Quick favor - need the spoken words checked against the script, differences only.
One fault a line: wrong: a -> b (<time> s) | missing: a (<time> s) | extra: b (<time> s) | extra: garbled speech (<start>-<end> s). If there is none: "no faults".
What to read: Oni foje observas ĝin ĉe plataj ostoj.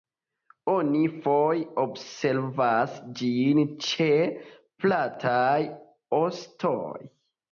no faults